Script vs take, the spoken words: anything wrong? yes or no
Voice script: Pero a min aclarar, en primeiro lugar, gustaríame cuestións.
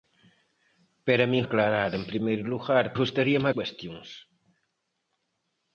no